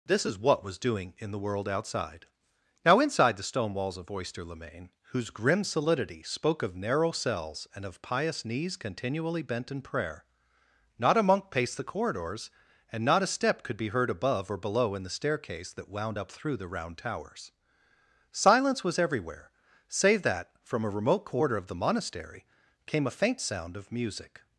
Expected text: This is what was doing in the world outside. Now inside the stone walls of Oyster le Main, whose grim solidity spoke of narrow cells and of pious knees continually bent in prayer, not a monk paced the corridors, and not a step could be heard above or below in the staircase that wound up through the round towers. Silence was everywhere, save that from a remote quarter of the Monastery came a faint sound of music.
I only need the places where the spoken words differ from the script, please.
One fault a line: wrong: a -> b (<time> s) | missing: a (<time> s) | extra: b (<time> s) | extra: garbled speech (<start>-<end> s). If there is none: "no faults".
no faults